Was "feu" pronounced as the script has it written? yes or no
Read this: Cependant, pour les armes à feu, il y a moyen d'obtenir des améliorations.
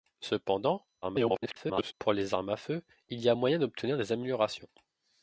yes